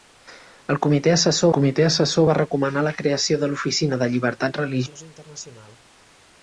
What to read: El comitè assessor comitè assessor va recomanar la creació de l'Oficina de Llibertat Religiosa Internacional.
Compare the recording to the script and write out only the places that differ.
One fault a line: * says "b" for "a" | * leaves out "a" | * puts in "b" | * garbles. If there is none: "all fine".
all fine